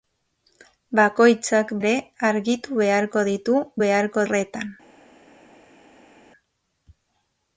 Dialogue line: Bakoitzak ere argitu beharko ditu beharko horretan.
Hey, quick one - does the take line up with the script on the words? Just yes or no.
yes